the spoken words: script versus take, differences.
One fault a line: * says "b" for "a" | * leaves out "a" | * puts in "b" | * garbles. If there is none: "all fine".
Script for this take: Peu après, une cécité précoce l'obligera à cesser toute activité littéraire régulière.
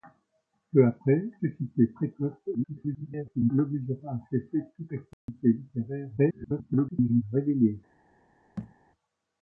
* leaves out "une"
* garbles
* garbles